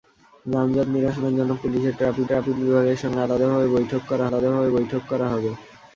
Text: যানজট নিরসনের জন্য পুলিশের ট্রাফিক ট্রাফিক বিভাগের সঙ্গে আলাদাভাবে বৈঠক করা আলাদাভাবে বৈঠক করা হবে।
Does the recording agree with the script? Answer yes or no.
yes